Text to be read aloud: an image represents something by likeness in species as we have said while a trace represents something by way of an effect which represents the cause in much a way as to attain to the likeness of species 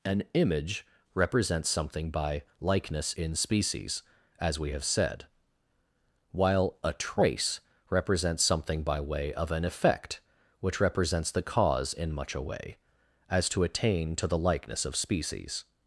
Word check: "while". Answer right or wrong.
right